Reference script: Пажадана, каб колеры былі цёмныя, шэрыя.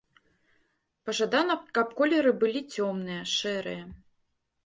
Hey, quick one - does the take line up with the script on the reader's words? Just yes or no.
yes